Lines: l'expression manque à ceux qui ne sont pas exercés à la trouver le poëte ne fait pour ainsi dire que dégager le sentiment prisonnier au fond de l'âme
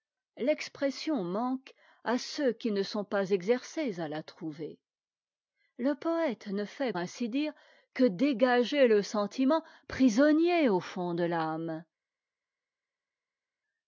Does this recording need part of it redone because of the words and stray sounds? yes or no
yes